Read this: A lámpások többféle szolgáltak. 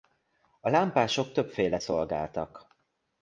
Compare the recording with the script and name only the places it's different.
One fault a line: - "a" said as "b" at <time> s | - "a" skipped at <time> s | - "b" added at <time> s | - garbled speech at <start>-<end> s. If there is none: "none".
none